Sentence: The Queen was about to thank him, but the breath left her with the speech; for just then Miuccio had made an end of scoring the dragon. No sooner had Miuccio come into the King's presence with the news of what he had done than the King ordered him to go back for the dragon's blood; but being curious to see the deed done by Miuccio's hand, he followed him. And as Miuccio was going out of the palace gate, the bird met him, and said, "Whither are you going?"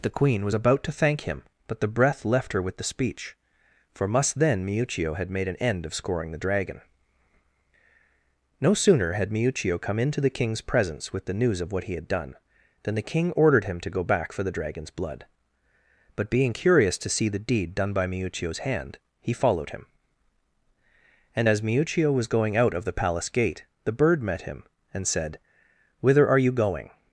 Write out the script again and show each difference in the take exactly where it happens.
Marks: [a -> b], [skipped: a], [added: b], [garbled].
The Queen was about to thank him, but the breath left her with the speech; for [just -> must] then Miuccio had made an end of scoring the dragon. No sooner had Miuccio come into the King's presence with the news of what he had done than the King ordered him to go back for the dragon's blood; but being curious to see the deed done by Miuccio's hand, he followed him. And as Miuccio was going out of the palace gate, the bird met him, and said, "Whither are you going?"